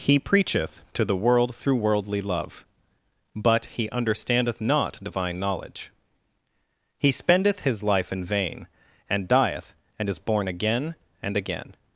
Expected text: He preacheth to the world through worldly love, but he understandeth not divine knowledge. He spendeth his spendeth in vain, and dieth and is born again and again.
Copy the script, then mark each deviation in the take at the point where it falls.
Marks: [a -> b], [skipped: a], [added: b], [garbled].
He preacheth to the world through worldly love, but he understandeth not divine knowledge. He spendeth his [spendeth -> life] in vain, and dieth and is born again and again.